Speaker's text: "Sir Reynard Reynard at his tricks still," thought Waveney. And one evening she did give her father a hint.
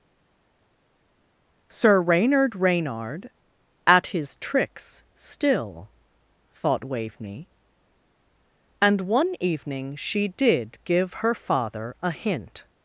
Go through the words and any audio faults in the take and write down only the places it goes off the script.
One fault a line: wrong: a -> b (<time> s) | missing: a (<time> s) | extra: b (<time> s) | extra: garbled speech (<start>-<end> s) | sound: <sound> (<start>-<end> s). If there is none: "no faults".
no faults